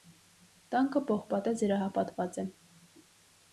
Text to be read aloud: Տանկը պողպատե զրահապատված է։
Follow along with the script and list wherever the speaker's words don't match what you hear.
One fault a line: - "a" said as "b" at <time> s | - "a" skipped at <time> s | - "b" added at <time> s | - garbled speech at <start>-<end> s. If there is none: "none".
none